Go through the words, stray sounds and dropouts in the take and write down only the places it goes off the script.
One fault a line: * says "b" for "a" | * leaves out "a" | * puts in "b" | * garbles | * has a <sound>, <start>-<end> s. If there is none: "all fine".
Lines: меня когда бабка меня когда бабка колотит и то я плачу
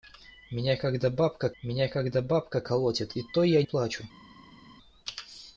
all fine